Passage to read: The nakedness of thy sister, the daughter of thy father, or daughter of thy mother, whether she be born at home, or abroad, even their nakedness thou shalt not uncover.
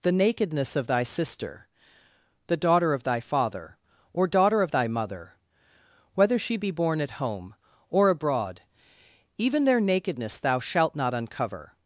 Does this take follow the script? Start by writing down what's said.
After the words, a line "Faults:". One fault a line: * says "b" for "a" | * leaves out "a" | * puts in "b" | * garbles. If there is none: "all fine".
The nakedness of thy sister, the daughter of thy father, or daughter of thy mother, whether she be born at home, or abroad, even their nakedness thou shalt not uncover.
Faults:
all fine